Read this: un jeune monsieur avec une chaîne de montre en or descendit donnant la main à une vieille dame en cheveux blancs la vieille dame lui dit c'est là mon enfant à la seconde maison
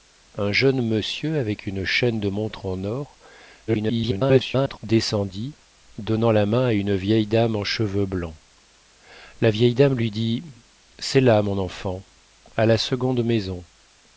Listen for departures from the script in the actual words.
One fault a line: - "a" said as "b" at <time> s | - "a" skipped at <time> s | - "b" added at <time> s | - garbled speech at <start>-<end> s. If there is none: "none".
- garbled speech at 3.7-4.8 s